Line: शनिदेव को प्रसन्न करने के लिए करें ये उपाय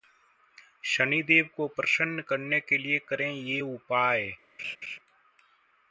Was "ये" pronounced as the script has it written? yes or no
yes